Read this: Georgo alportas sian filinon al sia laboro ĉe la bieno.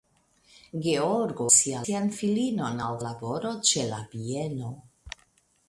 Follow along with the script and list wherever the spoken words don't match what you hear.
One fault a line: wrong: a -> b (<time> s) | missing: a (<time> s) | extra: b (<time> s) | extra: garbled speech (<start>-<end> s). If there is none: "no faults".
wrong: alportas -> sia (1.6 s)
missing: sia (3.0 s)